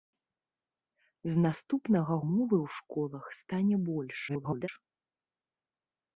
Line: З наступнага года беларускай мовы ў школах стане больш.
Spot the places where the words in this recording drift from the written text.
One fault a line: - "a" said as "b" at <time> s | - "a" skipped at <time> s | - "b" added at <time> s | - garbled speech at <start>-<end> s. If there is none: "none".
- "года беларускай" skipped at 2.1 s
- garbled speech at 4.3-4.7 s